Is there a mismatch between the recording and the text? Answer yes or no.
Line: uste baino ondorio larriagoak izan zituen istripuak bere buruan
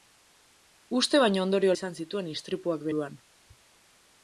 yes